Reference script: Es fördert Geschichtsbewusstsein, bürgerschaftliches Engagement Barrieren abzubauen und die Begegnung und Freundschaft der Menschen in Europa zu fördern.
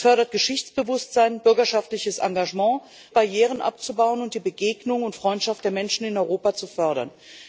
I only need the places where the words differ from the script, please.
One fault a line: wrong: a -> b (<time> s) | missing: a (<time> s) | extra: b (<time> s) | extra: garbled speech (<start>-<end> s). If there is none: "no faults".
no faults